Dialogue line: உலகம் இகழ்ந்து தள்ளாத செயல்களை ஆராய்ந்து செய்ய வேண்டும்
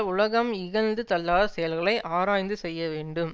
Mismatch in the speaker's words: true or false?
false